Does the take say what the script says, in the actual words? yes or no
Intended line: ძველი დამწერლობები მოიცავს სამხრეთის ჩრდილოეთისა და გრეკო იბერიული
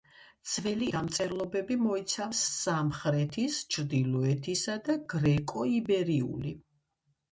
yes